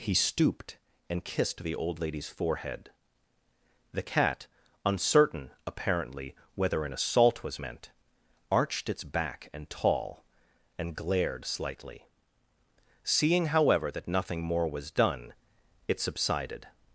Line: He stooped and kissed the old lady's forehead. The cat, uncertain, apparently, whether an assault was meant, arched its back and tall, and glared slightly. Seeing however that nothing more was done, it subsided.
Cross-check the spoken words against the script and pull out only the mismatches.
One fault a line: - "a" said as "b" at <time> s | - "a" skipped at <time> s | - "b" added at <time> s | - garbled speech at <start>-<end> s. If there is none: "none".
none